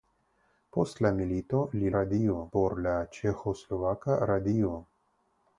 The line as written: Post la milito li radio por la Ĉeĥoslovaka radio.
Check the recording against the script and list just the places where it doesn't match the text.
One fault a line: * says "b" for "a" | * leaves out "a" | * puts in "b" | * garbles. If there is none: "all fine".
all fine